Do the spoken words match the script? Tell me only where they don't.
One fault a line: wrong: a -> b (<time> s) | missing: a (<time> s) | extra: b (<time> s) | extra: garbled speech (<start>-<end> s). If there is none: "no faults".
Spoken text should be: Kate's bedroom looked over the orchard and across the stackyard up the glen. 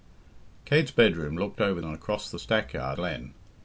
missing: the orchard (1.8 s)
missing: up the (3.0 s)